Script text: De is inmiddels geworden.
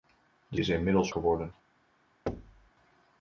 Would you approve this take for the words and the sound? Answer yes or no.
no